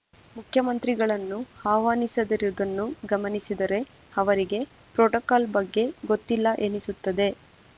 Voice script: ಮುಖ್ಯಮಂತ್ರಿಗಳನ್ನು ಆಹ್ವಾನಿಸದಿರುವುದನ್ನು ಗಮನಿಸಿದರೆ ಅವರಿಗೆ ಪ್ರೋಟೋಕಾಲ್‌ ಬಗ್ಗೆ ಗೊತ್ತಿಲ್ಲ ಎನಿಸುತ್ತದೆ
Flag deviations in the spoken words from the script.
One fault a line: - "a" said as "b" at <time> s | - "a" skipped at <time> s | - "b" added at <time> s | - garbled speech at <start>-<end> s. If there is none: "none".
none